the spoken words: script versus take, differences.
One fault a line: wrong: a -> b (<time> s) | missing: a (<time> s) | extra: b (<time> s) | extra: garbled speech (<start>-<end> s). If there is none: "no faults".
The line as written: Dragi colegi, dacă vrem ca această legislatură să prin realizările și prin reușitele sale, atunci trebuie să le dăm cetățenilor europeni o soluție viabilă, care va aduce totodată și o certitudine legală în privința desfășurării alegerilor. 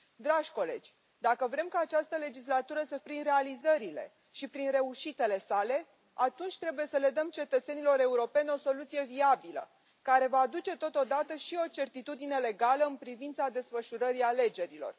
no faults